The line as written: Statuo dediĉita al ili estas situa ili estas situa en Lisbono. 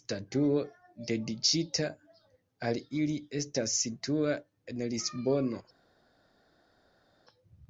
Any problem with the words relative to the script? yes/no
yes